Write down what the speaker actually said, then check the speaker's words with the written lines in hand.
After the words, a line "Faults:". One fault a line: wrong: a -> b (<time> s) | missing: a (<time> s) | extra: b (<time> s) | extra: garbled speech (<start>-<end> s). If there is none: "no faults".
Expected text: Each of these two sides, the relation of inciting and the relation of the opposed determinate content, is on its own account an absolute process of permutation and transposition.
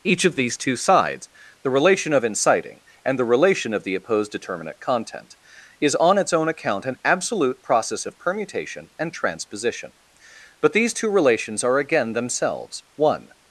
Each of these two sides, the relation of inciting and the relation of the opposed determinate content, is on its own account an absolute process of permutation and transposition. But these two relations are again themselves one
Faults:
extra: But these two relations are again themselves one (10.6 s)